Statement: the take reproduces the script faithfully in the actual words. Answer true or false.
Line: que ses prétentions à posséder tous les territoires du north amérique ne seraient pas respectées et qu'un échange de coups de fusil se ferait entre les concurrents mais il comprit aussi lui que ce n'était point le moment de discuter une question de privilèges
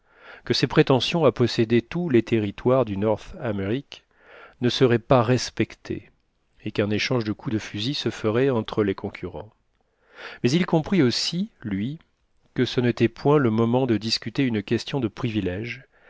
true